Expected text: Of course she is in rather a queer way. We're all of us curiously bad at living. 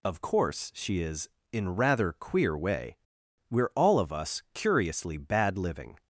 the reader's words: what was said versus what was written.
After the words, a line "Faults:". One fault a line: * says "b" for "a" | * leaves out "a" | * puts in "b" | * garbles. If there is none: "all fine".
Of course she is in rather queer way. We're all of us curiously bad living.
Faults:
* leaves out "a"
* leaves out "at"